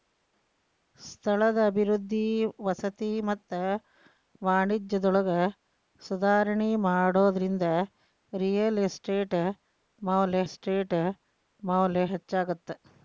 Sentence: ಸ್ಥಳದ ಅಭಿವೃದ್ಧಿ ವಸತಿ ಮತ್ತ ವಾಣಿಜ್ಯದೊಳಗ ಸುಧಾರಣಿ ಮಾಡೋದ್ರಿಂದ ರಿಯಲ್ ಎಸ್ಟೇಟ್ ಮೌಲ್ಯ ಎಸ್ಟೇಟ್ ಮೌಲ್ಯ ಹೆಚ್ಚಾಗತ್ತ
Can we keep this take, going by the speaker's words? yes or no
yes